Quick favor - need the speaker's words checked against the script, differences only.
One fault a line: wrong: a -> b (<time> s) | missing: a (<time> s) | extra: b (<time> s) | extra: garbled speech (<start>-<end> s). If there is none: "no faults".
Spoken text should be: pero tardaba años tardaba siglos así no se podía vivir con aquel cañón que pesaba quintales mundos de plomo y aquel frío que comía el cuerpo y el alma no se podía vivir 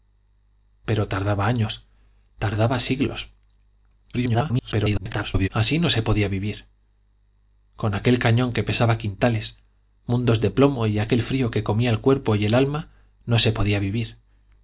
extra: garbled speech (4.1-5.5 s)